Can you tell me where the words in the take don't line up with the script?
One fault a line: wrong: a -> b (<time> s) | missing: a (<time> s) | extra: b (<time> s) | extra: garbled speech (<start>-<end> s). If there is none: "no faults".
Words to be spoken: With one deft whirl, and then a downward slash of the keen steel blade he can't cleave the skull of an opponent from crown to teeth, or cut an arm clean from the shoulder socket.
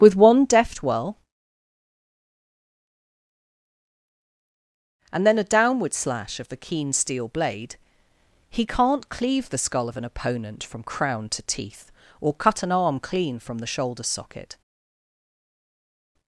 no faults